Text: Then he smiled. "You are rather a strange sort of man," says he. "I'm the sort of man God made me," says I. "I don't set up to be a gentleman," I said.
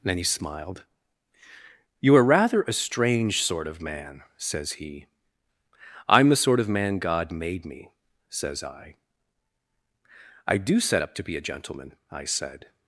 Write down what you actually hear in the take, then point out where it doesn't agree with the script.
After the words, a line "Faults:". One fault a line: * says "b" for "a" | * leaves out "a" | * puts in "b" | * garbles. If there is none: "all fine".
Then he smiled. "You are rather a strange sort of man," says he. "I'm the sort of man God made me," says I. "I do set up to be a gentleman," I said.
Faults:
* says "do" for "don't"